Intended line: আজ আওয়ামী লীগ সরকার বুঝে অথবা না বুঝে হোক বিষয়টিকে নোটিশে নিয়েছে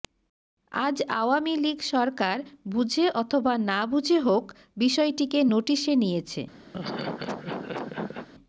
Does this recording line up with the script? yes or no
yes